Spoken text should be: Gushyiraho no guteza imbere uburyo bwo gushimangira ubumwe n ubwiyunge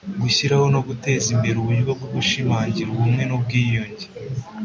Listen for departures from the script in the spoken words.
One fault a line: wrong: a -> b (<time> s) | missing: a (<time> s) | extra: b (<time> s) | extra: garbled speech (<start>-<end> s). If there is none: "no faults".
no faults